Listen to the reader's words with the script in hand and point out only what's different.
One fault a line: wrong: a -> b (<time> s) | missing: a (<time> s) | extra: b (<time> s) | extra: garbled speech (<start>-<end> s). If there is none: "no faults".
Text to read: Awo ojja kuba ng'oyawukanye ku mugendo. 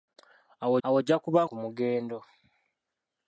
extra: awo (0.9 s)
missing: ng'oyawukanye (1.4 s)